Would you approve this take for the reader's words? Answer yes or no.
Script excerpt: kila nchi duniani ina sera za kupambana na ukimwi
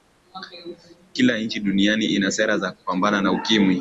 yes